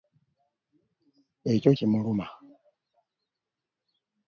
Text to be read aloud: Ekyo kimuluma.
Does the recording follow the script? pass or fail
pass